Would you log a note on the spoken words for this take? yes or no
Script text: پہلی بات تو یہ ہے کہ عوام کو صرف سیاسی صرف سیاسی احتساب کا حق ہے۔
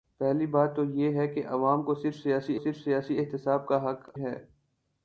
no